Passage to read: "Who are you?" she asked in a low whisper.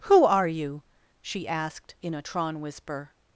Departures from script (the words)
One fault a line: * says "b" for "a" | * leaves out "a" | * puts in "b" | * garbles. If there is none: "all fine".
* says "tron" for "low"